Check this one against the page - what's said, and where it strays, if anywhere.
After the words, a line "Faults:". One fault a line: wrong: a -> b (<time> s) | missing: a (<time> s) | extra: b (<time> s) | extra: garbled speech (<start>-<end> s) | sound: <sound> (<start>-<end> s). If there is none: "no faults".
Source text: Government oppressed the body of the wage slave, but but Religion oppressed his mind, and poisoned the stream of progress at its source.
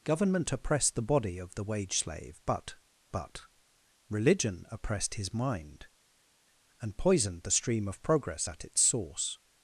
Government oppressed the body of the wage slave, but but Religion oppressed his mind, and poisoned the stream of progress at its source.
Faults:
no faults